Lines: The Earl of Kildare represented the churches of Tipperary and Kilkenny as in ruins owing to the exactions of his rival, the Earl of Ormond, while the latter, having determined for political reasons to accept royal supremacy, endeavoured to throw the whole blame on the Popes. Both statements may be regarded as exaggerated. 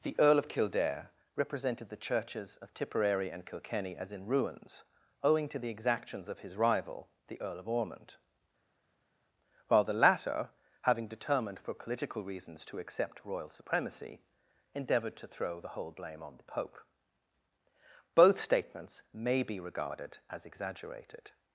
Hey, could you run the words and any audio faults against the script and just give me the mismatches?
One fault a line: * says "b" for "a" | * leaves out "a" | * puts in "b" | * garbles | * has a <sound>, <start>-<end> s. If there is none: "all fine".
* says "Pope" for "Popes"